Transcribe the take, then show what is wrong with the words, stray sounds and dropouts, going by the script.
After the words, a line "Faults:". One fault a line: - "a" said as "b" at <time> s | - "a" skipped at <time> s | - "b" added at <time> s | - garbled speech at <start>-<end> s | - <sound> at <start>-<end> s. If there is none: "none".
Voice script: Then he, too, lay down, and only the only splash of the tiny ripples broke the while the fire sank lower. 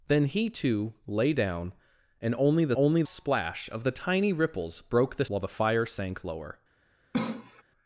Then he, too, lay down, and only the only splash of the tiny ripples broke the while the fire sank lower.
Faults:
- cough at 7.1-7.6 s